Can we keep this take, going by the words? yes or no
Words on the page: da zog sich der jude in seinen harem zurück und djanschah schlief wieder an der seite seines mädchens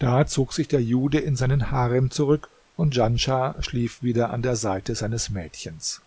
yes